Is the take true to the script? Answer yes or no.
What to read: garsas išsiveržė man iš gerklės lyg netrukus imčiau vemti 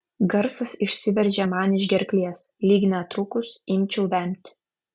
yes